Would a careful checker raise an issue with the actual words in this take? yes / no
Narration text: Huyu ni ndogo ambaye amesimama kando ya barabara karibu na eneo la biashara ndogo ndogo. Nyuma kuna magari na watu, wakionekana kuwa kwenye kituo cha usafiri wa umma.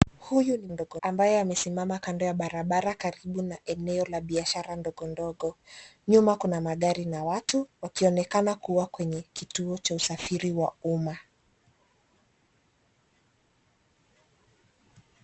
no